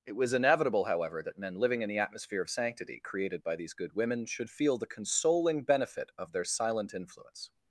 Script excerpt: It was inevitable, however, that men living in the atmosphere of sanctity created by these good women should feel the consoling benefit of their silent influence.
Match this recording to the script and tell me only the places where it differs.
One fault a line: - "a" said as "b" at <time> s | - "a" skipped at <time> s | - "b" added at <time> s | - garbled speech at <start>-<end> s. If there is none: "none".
none